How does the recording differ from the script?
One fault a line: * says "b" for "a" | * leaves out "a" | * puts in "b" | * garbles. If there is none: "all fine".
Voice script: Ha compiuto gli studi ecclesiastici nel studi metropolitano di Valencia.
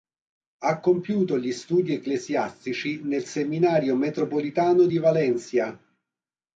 * says "seminario" for "studi"